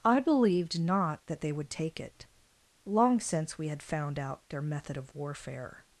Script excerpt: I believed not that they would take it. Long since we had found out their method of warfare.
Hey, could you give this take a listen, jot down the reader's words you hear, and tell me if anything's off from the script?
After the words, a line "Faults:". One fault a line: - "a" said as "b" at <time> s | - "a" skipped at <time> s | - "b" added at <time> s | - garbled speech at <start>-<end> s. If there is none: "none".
I believed not that they would take it. Long since we had found out their method of warfare.
Faults:
none